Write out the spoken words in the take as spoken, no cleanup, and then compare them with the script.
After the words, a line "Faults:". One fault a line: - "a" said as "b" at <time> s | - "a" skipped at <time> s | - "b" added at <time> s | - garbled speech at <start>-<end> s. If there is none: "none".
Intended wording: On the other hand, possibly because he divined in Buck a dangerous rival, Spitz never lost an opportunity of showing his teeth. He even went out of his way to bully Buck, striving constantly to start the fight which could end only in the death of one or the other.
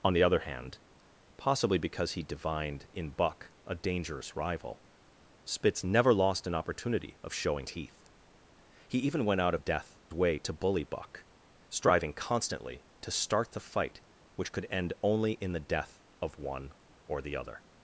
On the other hand, possibly because he divined in Buck a dangerous rival, Spitz never lost an opportunity of showing teeth. He even went out of death way to bully Buck, striving constantly to start the fight which could end only in the death of one or the other.
Faults:
- "his" skipped at 7.7 s
- "his" said as "death" at 9.6 s